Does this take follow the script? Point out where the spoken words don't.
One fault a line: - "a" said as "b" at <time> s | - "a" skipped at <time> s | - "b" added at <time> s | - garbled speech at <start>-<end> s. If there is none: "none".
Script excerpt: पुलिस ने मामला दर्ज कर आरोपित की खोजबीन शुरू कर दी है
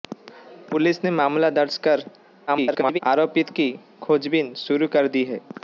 - garbled speech at 2.5-3.0 s